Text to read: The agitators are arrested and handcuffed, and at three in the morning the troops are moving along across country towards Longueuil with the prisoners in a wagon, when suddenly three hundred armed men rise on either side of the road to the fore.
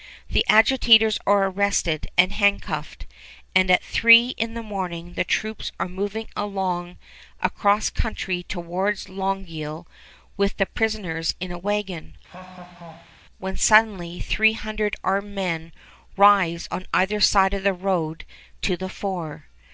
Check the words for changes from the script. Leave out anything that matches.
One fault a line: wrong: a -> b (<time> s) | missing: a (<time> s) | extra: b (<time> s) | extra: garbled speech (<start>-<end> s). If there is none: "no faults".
no faults